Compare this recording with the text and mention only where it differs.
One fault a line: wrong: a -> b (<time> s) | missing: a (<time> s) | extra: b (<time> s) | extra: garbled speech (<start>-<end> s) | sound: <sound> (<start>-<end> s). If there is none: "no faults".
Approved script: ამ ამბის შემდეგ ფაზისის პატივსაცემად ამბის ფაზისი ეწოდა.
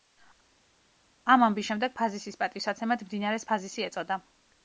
wrong: ამბის -> მდინარეს (3.1 s)